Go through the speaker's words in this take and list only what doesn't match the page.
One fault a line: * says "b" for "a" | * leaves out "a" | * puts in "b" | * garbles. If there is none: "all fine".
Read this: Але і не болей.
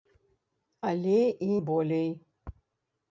* leaves out "не"